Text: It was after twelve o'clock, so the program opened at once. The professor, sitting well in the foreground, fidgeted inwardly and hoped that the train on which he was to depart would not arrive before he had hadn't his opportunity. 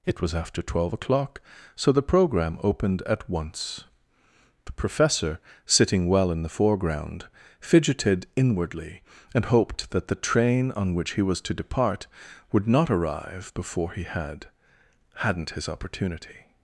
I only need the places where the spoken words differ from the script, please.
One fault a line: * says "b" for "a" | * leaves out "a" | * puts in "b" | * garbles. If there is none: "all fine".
all fine